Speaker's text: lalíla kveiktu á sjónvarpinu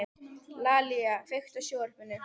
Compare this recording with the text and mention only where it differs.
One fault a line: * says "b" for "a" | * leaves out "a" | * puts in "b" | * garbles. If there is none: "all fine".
all fine